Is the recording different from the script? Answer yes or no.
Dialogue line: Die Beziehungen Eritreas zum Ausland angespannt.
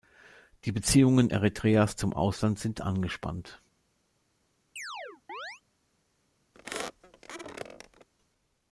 yes